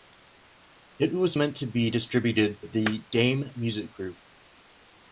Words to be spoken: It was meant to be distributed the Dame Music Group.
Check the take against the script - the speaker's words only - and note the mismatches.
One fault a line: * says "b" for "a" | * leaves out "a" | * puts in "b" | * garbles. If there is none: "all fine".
all fine